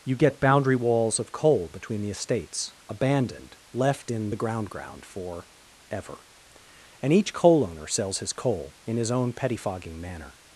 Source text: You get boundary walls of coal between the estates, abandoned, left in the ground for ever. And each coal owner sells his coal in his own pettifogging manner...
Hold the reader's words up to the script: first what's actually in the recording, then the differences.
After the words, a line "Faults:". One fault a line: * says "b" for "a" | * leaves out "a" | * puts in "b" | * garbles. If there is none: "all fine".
You get boundary walls of coal between the estates, abandoned, left in the ground ground for ever. And each coal owner sells his coal in his own pettifogging manner...
Faults:
* puts in "ground"